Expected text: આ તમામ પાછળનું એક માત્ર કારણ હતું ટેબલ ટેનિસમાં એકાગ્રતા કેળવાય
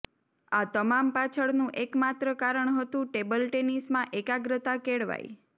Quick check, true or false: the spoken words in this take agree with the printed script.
true